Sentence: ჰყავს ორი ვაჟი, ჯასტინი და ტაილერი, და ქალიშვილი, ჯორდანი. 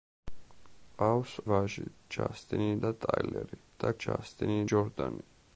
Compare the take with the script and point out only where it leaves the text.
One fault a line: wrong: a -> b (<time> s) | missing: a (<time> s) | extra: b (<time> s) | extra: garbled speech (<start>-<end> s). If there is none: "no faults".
missing: ორი (1.3 s)
wrong: ქალიშვილი -> ჯასტინი (4.0 s)